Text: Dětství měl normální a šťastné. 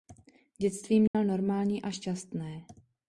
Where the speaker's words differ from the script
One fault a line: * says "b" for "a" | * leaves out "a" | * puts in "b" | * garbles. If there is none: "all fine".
all fine